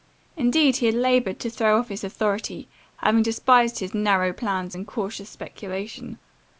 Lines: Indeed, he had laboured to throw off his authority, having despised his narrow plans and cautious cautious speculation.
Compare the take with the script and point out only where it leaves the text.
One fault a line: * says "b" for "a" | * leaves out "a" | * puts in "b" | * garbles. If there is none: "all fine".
* leaves out "cautious"